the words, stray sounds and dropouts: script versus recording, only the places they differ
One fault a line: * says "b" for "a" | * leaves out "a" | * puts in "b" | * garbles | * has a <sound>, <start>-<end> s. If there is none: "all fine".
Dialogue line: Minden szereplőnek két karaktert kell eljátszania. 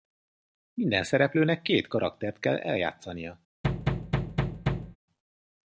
* has a thud, 3.6-5.0 s